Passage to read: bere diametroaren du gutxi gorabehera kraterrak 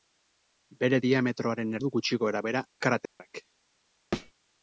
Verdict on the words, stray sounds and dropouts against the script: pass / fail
fail